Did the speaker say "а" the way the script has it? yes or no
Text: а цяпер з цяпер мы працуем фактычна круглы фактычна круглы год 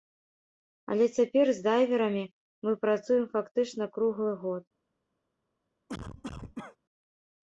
no